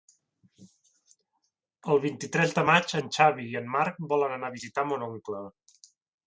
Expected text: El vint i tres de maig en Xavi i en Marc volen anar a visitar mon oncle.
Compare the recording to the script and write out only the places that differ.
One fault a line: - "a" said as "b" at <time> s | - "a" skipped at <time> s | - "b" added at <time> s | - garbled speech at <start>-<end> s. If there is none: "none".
none